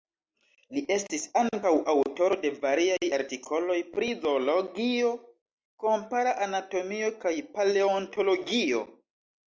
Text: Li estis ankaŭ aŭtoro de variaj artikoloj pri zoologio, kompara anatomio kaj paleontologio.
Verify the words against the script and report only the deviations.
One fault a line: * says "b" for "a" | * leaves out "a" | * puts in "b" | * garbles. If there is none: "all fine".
all fine